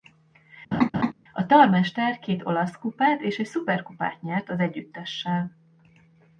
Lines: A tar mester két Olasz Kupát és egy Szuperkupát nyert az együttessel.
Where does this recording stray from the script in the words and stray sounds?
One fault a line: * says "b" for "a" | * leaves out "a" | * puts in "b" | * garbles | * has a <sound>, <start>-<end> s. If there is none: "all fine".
* has a laugh, 0.7-1.1 s